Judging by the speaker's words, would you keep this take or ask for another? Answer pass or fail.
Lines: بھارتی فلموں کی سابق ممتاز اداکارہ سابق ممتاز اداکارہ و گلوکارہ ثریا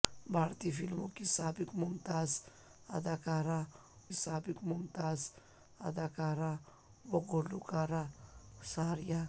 pass